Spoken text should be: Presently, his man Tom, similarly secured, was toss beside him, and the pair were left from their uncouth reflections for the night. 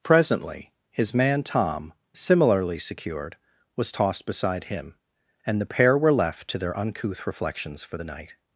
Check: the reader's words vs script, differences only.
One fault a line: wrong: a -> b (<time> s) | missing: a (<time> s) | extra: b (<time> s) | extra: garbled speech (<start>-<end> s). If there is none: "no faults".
wrong: toss -> tossed (3.9 s)
wrong: from -> to (6.5 s)